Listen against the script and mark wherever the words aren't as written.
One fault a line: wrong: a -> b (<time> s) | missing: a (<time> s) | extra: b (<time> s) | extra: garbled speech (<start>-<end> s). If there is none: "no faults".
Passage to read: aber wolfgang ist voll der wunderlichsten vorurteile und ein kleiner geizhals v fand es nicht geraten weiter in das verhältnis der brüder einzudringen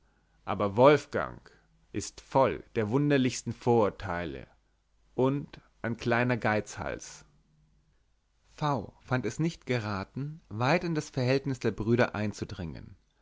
no faults